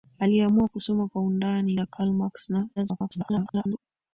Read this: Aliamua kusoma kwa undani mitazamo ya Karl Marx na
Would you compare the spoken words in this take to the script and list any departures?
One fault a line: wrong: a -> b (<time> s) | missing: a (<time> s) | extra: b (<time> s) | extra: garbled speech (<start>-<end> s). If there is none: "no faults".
missing: mitazamo (1.8 s)
extra: garbled speech (2.8-3.8 s)